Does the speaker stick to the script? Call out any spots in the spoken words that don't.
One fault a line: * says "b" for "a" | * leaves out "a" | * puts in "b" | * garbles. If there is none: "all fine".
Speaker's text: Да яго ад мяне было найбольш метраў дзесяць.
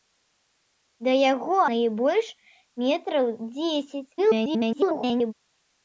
* leaves out "ад мяне было"
* garbles